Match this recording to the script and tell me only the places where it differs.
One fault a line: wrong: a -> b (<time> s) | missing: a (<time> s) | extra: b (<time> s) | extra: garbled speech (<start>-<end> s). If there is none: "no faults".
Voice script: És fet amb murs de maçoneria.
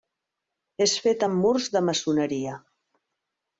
no faults